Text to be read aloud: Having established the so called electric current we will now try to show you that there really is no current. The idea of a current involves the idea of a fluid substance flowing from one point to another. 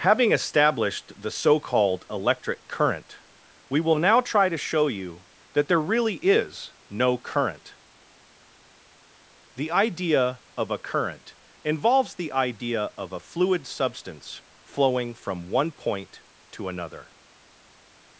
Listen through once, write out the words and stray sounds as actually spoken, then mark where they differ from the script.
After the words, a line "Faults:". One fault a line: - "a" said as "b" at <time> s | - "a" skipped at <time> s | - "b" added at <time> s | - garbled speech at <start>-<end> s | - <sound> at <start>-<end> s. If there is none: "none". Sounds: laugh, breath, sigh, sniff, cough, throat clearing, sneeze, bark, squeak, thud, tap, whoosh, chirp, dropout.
Having established the so called electric current we will now try to show you that there really is no current. The idea of a current involves the idea of a fluid substance flowing from one point to another.
Faults:
none